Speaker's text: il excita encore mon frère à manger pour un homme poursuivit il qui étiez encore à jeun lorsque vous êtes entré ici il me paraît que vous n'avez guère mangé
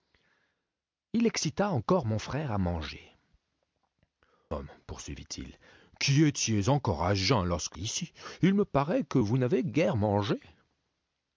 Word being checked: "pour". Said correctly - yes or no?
no